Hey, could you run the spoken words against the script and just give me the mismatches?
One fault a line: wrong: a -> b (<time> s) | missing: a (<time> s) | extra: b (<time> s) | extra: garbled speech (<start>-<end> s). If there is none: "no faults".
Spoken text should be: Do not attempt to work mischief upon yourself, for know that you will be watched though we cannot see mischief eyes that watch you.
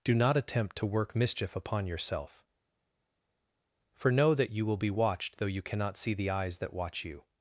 wrong: we -> you (5.5 s)
wrong: mischief -> the (6.1 s)